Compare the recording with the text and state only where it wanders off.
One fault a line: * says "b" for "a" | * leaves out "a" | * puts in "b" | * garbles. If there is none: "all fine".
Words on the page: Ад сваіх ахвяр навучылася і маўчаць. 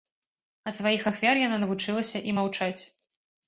* puts in "яна"